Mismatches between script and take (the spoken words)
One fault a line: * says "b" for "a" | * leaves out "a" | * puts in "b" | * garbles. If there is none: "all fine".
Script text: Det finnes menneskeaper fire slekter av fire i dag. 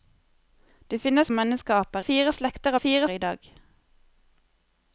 all fine